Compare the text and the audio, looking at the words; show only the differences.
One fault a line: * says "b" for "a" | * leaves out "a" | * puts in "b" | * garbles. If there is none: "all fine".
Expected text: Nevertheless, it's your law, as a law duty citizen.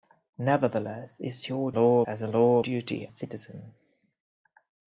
all fine